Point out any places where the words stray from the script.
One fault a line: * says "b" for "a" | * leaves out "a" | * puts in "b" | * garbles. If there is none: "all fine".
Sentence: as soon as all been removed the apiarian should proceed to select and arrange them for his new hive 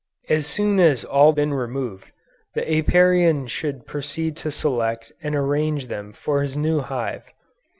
all fine